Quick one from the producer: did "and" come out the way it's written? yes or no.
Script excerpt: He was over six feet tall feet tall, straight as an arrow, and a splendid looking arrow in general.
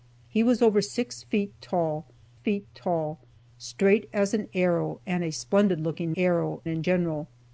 yes